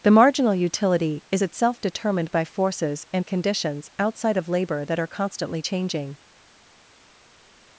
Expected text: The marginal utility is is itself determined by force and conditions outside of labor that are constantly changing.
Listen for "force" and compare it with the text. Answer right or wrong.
wrong